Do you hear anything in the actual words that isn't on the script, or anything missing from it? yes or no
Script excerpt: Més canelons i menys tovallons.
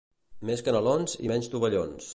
no